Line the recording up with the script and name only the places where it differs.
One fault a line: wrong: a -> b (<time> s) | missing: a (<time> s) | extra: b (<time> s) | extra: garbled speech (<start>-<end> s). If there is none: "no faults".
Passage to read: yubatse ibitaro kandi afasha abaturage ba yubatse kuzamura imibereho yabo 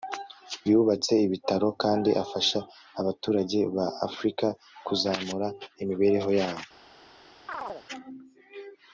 wrong: yubatse -> afrika (4.1 s)